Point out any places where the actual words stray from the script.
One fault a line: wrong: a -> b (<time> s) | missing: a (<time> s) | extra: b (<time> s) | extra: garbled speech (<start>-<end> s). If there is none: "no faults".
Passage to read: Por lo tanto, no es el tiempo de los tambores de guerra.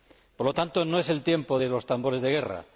no faults